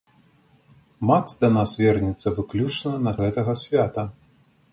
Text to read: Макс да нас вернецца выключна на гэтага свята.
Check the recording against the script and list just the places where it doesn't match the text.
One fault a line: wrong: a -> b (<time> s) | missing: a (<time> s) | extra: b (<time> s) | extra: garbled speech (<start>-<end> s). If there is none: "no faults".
no faults